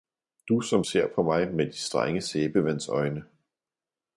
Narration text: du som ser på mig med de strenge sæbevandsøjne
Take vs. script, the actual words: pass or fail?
pass